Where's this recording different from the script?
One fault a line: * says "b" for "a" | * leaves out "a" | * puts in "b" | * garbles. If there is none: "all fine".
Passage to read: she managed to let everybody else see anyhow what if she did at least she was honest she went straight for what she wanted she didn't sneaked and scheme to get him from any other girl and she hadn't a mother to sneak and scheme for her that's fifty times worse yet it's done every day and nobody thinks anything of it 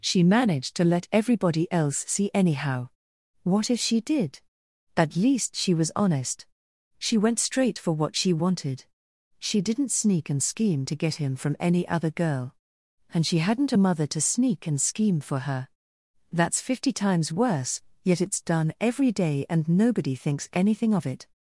* says "sneak" for "sneaked"